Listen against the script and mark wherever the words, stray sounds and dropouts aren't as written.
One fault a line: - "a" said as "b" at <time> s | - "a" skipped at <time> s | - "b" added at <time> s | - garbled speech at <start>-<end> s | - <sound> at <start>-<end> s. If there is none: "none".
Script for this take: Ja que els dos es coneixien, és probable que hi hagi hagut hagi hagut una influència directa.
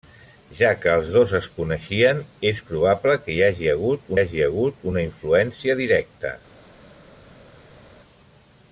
none